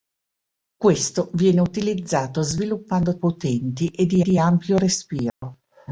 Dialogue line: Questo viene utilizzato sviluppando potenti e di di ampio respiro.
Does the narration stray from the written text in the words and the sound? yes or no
yes